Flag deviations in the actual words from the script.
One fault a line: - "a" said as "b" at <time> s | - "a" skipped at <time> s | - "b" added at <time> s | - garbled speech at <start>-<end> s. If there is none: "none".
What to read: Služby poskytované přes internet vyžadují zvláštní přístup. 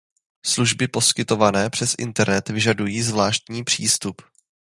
none